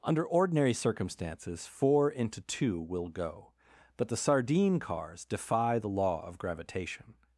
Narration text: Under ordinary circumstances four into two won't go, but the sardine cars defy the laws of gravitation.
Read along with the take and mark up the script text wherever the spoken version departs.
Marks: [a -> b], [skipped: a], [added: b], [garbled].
Under ordinary circumstances four into two [won't -> will] go, but the sardine cars defy the [laws -> law] of gravitation.